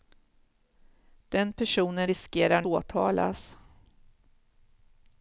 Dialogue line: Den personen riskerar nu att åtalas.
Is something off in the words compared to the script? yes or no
yes